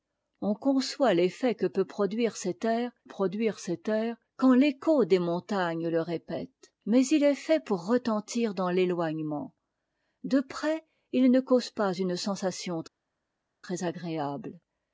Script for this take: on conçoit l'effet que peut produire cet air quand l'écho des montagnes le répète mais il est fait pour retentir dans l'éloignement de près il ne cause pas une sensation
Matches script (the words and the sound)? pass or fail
fail